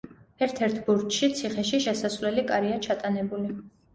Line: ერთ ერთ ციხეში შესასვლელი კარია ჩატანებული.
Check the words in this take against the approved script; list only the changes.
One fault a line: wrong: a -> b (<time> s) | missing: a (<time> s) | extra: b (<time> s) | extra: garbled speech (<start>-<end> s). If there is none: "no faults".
extra: ბურჯში (0.9 s)